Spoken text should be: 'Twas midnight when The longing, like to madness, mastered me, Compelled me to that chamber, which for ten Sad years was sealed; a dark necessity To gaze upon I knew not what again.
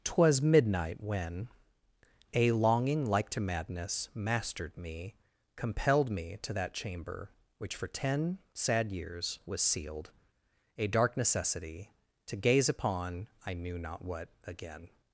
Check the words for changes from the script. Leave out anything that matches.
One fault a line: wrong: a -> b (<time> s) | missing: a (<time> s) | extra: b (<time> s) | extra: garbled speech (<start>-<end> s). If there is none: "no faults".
wrong: The -> A (2.3 s)